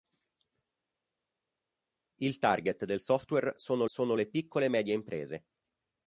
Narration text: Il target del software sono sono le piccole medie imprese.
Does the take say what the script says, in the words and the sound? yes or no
yes